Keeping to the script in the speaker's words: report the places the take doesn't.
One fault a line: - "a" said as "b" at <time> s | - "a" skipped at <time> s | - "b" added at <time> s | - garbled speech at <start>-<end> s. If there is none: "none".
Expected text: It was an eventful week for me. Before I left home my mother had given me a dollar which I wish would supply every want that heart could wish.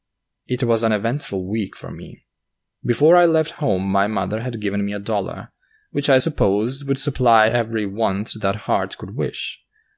- "wish" said as "supposed" at 6.1 s